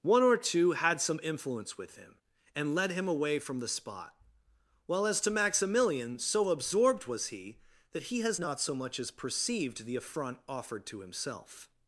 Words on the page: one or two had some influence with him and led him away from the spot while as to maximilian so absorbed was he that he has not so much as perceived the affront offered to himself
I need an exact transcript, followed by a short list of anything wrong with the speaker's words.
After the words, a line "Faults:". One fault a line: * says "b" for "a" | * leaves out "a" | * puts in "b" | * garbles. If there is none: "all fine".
one or two had some influence with him and led him away from the spot while as to maximilian so absorbed was he that he has not so much as perceived the affront offered to himself
Faults:
all fine